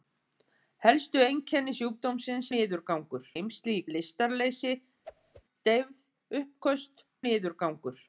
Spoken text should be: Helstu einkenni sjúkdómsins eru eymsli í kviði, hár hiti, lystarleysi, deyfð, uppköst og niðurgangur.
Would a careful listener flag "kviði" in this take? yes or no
yes